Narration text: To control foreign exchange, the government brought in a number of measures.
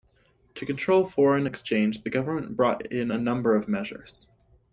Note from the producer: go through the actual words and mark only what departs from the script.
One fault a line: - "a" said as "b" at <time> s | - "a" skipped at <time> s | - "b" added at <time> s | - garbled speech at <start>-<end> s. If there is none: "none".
none